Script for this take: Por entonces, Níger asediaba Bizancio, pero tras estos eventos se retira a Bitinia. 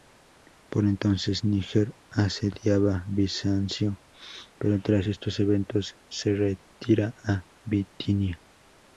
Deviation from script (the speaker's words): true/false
false